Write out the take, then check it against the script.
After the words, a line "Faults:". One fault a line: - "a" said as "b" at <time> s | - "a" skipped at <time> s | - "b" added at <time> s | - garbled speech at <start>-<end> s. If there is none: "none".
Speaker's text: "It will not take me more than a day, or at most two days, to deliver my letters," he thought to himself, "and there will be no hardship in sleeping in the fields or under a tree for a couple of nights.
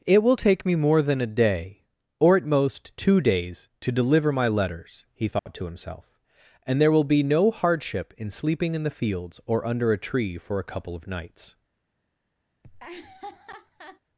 "It will take me more than a day, or at most two days, to deliver my letters," he thought to himself, "and there will be no hardship in sleeping in the fields or under a tree for a couple of nights.
Faults:
- "not" skipped at 0.3 s